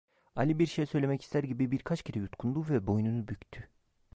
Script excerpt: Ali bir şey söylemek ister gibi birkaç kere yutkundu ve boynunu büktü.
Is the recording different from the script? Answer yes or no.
no